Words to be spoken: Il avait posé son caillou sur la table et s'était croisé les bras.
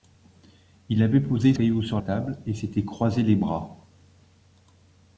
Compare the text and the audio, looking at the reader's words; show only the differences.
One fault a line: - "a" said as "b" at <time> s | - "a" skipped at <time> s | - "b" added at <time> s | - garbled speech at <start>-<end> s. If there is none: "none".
- "son" skipped at 1.5 s
- "la" skipped at 2.0 s